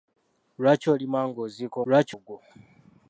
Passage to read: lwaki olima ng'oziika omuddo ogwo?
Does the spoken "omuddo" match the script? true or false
false